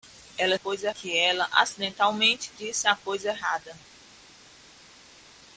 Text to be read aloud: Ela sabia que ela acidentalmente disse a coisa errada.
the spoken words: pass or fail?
fail